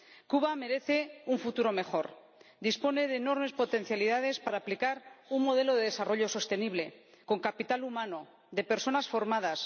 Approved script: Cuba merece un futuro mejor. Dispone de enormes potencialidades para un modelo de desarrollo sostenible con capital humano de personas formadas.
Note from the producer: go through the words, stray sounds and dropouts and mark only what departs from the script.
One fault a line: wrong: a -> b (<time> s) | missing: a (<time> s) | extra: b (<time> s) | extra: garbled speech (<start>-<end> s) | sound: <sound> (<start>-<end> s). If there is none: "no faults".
extra: aplicar (4.6 s)